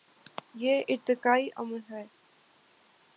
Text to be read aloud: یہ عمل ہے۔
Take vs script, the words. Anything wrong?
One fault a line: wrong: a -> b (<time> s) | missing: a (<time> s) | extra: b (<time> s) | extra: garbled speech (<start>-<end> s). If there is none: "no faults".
extra: ارتقائی (0.9 s)